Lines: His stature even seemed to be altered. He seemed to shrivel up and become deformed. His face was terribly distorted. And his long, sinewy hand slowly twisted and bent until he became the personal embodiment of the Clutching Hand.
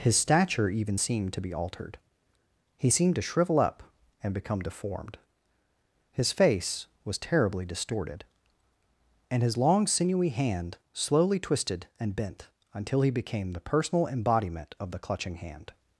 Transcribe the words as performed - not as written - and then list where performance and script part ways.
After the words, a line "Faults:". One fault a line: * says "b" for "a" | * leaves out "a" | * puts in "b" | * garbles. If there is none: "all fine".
His stature even seemed to be altered. He seemed to shrivel up and become deformed. His face was terribly distorted. And his long, sinewy hand slowly twisted and bent until he became the personal embodiment of the Clutching Hand.
Faults:
all fine